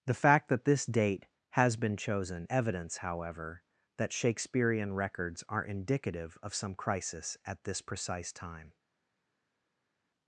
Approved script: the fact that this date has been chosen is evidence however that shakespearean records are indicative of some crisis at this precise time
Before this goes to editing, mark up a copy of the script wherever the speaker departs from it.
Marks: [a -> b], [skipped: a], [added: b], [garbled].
the fact that this date has been chosen [skipped: is] evidence however that shakespearean records are indicative of some crisis at this precise time